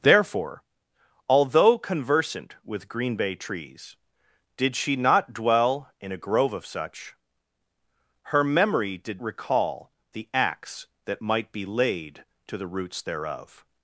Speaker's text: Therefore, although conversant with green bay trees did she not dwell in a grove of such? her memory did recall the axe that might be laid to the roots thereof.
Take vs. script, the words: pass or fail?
pass